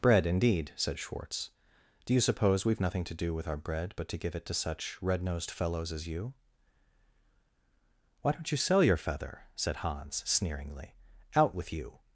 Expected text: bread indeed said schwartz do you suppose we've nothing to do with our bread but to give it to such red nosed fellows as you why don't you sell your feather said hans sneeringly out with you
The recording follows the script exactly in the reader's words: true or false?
true